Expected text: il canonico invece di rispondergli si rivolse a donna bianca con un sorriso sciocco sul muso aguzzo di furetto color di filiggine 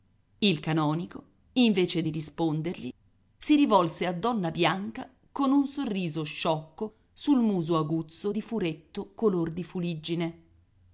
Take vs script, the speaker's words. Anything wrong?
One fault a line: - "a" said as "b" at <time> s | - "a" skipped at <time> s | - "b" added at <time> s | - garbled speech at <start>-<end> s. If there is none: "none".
none